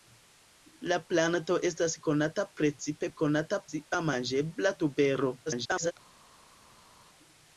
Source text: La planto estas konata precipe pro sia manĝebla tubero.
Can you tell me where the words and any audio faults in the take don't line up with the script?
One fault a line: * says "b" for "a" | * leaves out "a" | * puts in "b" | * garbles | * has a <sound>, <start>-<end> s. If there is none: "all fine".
* says "konata" for "pro"
* garbles